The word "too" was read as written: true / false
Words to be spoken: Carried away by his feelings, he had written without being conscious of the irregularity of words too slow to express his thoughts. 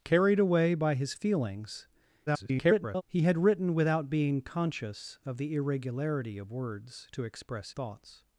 false